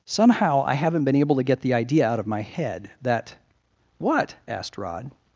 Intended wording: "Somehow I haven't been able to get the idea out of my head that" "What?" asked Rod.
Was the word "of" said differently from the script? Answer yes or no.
no